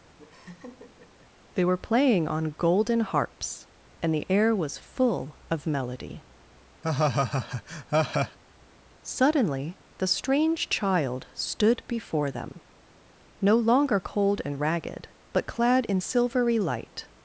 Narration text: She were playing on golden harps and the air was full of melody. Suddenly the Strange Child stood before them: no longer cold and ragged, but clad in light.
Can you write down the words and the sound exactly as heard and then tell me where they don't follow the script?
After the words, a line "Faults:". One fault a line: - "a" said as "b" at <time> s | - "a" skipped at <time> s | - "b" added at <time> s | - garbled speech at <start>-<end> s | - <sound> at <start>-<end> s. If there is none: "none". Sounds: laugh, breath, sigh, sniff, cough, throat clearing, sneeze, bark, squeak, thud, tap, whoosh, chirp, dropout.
They were playing on golden harps and the air was full of melody. Suddenly the Strange Child stood before them: no longer cold and ragged, but clad in silvery light.
Faults:
- laugh at 0.2-1.3 s
- "She" said as "They" at 1.5 s
- laugh at 6.8-8.4 s
- "silvery" added at 16.0 s